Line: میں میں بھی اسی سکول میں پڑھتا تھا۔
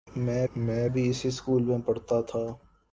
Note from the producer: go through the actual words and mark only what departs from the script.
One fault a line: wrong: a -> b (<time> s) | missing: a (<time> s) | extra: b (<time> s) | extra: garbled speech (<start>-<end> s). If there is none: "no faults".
no faults